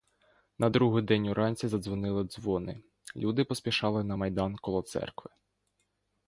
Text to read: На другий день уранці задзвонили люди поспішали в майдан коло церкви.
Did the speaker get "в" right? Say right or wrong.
wrong